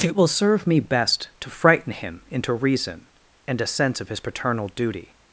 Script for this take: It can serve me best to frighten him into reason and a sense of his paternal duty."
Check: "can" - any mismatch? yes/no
yes